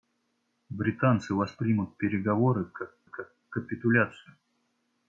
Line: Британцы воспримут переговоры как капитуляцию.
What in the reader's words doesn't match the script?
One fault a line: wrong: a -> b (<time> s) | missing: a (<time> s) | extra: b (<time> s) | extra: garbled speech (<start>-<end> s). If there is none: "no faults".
extra: как (3.0 s)